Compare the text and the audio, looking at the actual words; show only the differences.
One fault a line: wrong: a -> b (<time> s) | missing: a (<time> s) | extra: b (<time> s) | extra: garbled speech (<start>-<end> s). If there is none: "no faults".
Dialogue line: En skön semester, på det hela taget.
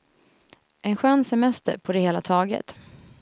no faults